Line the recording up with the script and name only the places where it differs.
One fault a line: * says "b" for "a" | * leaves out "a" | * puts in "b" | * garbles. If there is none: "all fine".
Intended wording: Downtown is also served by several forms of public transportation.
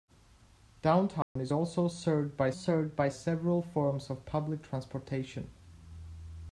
* puts in "served by"